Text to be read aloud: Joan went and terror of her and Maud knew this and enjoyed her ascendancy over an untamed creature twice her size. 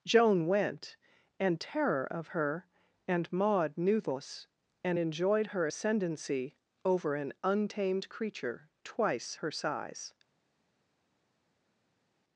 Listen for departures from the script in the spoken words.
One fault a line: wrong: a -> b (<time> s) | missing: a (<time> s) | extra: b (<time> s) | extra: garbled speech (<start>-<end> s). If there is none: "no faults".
no faults